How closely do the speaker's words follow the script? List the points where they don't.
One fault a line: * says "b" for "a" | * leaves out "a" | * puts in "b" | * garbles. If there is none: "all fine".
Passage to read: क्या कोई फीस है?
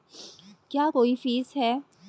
all fine